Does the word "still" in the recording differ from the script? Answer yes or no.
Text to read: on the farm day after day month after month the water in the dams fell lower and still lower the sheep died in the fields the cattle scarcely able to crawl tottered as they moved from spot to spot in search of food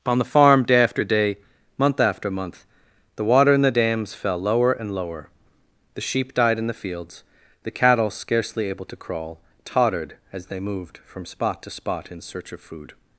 yes